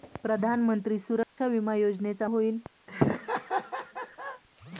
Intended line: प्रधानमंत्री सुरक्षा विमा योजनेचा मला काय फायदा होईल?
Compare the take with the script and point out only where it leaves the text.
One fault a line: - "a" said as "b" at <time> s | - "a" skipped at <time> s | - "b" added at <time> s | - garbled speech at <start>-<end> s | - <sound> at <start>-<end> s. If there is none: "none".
- dropout at 1.2-1.4 s
- "मला काय फायदा" skipped at 2.3 s
- laugh at 2.9-4.4 s